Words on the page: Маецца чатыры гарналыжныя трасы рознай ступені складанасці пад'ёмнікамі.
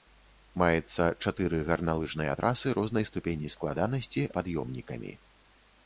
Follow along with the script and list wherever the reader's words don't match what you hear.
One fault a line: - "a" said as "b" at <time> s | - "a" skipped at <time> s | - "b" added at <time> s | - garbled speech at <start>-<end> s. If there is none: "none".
none